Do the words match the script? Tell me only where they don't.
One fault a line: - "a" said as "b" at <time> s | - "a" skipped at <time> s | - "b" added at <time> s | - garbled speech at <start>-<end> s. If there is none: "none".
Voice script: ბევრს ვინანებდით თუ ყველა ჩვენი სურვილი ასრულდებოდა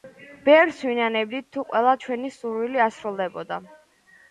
none